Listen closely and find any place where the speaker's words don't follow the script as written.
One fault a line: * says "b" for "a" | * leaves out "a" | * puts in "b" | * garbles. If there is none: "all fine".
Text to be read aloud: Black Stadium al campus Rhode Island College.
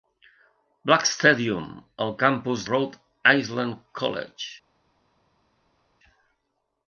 all fine